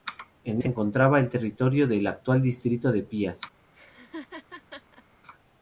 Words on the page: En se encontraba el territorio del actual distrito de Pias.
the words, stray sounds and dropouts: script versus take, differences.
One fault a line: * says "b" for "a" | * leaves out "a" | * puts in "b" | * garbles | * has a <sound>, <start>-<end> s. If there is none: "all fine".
* has a laugh, 3.7-5.0 s